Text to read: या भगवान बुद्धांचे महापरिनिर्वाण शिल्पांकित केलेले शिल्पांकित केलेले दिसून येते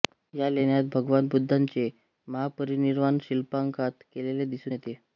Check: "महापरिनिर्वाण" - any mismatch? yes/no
no